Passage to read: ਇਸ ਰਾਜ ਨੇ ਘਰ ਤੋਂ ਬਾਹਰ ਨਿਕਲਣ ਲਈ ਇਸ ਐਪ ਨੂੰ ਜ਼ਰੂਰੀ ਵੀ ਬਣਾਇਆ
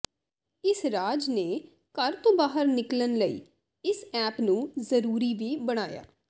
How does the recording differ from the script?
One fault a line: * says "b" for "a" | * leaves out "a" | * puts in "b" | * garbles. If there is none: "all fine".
all fine